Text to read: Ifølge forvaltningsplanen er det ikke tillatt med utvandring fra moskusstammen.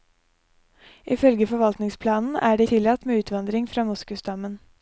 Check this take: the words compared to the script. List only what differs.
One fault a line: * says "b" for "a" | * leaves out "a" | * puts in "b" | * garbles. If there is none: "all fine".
* leaves out "ikke"